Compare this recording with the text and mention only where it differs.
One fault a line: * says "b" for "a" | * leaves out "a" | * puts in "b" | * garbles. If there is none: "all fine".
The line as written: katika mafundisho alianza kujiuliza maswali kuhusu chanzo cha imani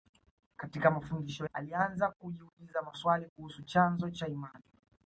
all fine